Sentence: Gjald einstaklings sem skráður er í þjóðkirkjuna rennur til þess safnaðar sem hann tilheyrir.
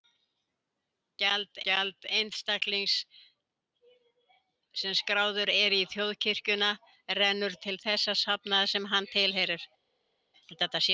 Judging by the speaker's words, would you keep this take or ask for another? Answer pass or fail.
fail